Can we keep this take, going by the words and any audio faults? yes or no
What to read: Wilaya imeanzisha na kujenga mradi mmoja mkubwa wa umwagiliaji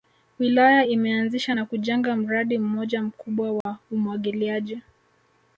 no